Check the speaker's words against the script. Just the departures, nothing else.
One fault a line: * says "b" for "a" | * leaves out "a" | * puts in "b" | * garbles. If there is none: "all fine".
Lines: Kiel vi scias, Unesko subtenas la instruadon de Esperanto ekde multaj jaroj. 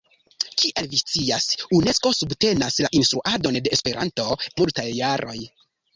* leaves out "ekde"